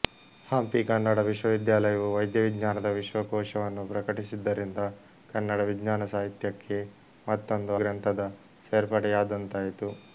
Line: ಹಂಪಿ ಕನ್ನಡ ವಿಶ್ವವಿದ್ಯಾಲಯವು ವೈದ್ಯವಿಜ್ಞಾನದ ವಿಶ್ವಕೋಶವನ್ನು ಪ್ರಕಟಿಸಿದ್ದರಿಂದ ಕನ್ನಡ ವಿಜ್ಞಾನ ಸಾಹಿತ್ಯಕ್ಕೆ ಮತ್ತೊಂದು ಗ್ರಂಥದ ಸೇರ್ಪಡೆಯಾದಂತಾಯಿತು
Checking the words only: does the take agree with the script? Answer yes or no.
yes